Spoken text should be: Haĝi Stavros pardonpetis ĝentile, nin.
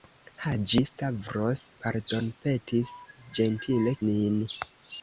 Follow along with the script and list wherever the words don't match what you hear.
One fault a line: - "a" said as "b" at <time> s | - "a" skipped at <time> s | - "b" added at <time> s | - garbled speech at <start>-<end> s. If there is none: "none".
none